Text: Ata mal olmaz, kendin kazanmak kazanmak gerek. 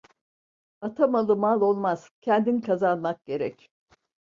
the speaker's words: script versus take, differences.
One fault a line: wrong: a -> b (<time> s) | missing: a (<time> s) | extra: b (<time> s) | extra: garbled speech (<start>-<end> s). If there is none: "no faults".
extra: malı (1.1 s)
missing: kazanmak (3.2 s)